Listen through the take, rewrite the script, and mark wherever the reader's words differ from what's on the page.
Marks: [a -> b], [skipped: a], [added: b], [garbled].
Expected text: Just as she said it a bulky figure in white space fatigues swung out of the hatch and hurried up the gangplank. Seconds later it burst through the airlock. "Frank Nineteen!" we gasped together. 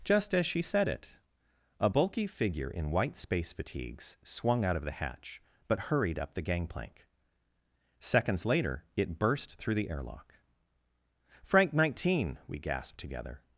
Just as she said it a bulky figure in white space fatigues swung out of the hatch [and -> but] hurried up the gangplank. Seconds later it burst through the airlock. "Frank Nineteen!" we gasped together.